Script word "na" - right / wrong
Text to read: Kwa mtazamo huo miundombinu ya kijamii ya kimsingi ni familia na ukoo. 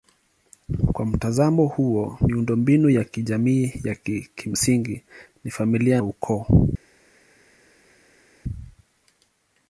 wrong